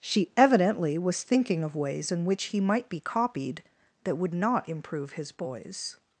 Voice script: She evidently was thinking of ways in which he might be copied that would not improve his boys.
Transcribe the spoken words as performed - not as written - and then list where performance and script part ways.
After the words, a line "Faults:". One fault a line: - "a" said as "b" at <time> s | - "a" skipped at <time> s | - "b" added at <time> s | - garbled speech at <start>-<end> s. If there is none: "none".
She evidently was thinking of ways in which he might be copied that would not improve his boys.
Faults:
none